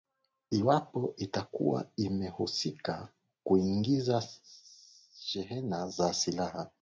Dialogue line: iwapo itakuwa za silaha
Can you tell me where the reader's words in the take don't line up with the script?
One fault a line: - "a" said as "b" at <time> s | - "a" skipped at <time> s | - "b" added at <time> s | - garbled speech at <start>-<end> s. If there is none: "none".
- "imehusika kuingiza shehena" added at 2.0 s